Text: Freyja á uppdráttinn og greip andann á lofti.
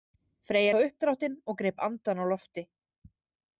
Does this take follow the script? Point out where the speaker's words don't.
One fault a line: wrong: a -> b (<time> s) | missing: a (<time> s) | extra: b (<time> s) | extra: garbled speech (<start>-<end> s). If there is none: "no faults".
no faults